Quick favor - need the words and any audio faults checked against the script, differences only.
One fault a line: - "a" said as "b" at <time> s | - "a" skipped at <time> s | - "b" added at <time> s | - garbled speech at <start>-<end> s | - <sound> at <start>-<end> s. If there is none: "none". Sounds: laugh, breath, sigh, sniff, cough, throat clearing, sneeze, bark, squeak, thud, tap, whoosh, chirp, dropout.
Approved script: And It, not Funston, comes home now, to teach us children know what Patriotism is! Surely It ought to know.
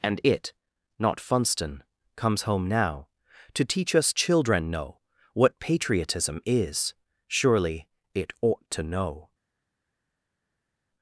none